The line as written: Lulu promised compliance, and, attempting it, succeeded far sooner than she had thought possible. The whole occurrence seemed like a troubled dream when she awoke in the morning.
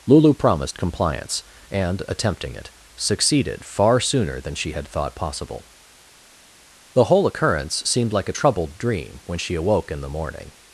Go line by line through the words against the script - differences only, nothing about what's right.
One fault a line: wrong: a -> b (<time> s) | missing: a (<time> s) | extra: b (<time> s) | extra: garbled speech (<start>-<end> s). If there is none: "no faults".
no faults